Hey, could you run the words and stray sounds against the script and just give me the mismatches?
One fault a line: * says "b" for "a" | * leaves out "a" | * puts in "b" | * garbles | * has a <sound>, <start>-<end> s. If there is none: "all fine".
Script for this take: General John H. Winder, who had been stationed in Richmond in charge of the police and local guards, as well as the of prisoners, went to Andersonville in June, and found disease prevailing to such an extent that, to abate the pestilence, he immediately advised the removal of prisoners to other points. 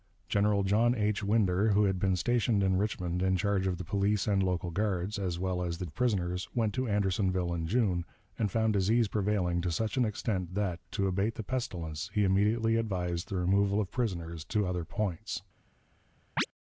* has a chirp, 16.4-16.5 s